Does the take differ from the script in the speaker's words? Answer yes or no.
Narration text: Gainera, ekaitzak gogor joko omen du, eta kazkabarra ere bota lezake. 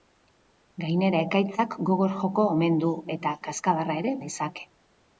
yes